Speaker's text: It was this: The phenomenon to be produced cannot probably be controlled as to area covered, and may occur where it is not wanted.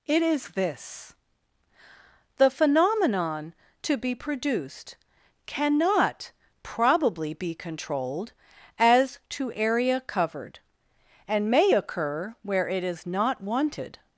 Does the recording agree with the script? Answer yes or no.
no